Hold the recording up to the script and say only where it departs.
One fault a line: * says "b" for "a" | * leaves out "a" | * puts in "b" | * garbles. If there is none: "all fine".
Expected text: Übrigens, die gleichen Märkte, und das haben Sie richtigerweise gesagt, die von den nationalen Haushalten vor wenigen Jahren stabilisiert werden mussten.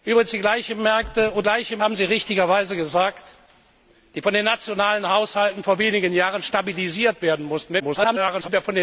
* says "gleichen" for "das"
* garbles